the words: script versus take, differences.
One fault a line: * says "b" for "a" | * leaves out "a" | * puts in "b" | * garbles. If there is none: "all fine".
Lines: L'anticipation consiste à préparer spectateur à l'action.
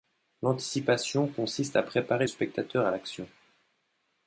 all fine